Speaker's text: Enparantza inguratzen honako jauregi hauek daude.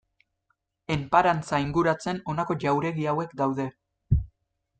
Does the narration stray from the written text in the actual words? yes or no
no